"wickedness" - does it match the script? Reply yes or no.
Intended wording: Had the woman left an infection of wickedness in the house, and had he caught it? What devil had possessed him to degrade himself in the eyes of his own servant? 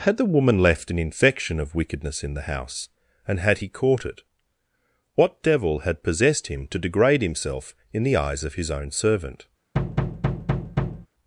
yes